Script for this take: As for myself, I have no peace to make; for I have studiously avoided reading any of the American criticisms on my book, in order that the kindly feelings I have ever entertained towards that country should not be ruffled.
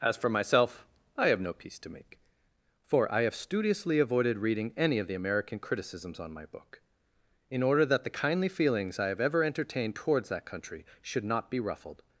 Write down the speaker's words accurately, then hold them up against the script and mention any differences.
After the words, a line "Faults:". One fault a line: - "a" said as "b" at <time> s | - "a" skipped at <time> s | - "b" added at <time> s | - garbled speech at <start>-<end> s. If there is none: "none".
As for myself, I have no peace to make; for I have studiously avoided reading any of the American criticisms on my book, in order that the kindly feelings I have ever entertained towards that country should not be ruffled.
Faults:
none